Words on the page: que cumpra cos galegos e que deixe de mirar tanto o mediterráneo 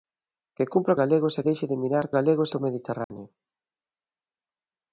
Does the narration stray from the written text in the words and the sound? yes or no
yes